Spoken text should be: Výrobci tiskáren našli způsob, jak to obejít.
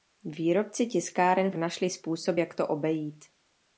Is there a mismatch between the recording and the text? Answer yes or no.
no